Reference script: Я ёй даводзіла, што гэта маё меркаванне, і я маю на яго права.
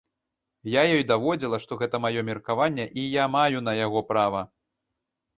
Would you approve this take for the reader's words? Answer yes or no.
yes